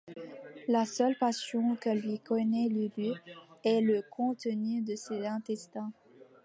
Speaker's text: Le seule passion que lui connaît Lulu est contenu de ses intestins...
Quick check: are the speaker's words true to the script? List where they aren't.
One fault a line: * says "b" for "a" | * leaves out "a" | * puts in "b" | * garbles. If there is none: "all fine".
* says "La" for "Le"
* puts in "le"